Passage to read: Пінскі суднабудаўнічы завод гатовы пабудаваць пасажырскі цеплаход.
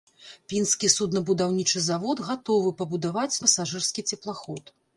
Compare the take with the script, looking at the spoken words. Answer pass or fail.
pass